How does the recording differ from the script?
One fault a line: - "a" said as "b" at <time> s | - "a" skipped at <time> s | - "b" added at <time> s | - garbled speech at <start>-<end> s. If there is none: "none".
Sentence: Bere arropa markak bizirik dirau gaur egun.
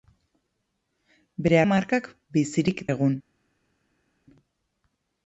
- "arropa" skipped at 1.6 s
- "dirau gaur" skipped at 2.8 s